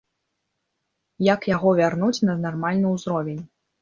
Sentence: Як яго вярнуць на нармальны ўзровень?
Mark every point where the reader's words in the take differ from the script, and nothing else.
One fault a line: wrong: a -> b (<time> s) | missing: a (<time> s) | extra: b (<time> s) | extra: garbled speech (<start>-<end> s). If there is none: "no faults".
no faults